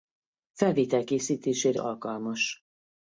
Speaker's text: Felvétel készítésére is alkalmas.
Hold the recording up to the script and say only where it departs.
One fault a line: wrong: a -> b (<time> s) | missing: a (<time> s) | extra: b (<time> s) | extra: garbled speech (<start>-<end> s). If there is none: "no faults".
missing: is (1.8 s)